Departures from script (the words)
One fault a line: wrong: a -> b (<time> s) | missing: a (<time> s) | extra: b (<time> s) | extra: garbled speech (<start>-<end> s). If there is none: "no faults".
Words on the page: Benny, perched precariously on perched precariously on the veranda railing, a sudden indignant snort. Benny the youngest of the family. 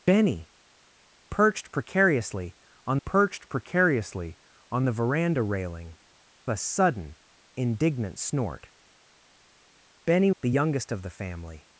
no faults